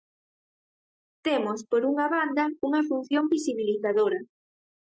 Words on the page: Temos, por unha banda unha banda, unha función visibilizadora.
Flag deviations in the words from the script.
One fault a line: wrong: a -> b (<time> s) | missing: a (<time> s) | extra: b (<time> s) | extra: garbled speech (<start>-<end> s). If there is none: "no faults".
missing: banda unha (2.8 s)